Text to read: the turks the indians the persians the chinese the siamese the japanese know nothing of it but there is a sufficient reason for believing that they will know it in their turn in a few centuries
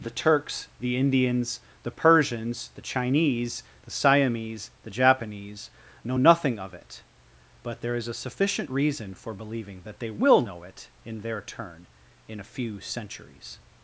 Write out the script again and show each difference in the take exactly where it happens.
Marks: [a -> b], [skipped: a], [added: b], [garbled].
the turks the indians the persians the chinese the siamese the japanese know nothing of it but there is a sufficient reason for believing that they will know it in their turn in a few centuries